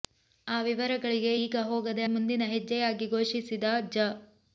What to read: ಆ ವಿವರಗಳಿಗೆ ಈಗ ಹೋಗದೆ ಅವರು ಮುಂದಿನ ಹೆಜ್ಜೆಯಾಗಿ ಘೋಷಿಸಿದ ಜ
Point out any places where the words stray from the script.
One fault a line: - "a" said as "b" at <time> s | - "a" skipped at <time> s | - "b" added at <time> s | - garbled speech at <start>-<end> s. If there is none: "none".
- "ಅವರು" skipped at 2.0 s